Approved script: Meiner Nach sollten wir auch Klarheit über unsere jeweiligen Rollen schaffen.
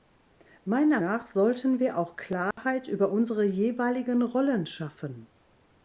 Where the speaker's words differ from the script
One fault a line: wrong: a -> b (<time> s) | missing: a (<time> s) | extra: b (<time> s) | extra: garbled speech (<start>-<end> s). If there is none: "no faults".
no faults